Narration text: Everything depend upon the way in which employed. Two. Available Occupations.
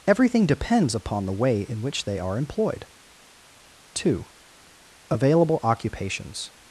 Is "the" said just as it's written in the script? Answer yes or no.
yes